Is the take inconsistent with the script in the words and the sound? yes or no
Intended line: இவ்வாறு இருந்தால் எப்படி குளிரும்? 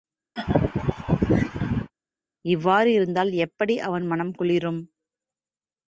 yes